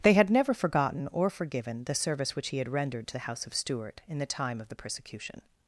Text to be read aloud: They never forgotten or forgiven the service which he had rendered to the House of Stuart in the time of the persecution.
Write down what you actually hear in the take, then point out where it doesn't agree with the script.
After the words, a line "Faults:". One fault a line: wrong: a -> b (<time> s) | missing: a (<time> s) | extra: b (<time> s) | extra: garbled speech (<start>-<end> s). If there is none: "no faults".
They had never forgotten or forgiven the service which he had rendered to the House of Stuart in the time of the persecution.
Faults:
extra: had (0.1 s)